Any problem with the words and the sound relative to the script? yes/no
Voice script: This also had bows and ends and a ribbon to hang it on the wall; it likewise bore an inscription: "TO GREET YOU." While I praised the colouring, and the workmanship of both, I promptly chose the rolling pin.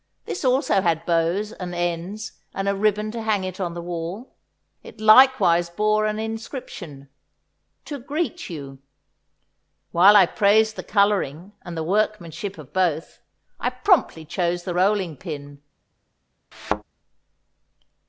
yes